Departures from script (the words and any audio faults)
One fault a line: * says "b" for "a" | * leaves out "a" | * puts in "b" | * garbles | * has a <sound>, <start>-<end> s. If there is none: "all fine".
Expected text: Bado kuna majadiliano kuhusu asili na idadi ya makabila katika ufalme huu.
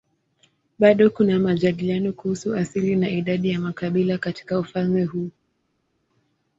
all fine